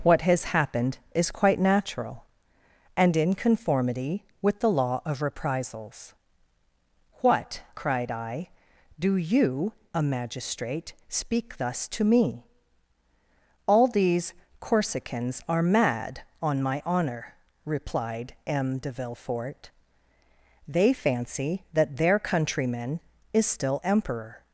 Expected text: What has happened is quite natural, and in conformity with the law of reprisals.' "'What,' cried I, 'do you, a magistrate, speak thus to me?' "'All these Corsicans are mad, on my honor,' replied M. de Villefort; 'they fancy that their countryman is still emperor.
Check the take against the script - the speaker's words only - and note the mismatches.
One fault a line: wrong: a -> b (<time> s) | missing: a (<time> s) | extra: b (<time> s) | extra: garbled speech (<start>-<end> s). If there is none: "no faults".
no faults